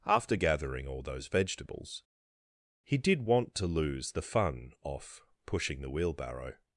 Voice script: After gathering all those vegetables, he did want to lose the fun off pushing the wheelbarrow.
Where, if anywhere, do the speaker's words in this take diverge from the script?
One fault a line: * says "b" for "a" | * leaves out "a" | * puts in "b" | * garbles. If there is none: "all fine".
all fine